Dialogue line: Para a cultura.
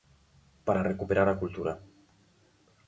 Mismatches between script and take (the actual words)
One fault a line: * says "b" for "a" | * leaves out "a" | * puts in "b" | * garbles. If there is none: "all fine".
* puts in "recuperar"